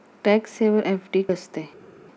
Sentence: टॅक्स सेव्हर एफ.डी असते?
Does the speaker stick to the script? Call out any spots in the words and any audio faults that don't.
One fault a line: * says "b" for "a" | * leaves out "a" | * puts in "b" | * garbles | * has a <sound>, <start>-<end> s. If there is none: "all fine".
all fine